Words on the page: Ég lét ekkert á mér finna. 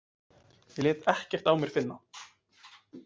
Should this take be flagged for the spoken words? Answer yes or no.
no